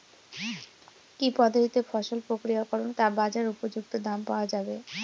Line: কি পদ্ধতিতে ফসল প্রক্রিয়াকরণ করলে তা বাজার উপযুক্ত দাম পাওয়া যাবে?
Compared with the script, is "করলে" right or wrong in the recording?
wrong